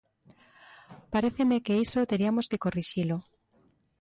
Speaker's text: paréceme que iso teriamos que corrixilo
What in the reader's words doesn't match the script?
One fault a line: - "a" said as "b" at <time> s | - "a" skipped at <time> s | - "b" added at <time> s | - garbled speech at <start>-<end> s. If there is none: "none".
none